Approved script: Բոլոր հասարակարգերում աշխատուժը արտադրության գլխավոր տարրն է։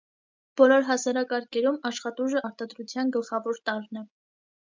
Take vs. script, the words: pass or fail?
pass